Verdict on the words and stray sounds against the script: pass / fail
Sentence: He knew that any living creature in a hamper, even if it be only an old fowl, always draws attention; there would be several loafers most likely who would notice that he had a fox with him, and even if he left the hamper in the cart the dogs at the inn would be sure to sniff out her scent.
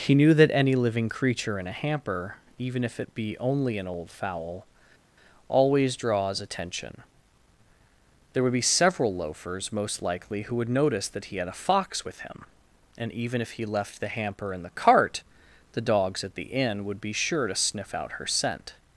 pass